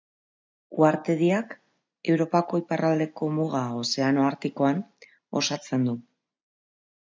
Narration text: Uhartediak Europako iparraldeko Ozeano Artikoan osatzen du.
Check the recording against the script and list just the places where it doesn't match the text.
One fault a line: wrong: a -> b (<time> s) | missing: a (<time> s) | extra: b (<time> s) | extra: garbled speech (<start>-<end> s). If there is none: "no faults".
extra: muga (3.4 s)